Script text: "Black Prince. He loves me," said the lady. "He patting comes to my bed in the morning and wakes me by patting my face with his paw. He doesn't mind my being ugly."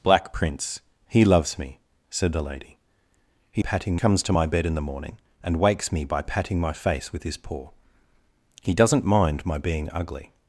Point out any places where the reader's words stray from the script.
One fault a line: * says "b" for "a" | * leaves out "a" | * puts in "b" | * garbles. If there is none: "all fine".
all fine